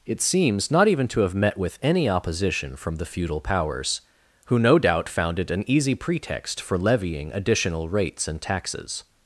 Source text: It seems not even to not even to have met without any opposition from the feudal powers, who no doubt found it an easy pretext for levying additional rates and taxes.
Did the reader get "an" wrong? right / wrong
right